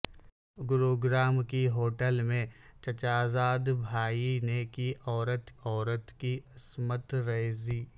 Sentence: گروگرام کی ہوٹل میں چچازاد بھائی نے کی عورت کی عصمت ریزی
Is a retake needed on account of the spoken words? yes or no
yes